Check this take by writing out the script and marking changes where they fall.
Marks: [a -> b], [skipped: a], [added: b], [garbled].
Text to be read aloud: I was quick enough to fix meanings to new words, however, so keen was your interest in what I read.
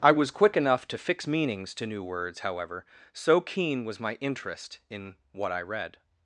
I was quick enough to fix meanings to new words, however, so keen was [your -> my] interest in what I read.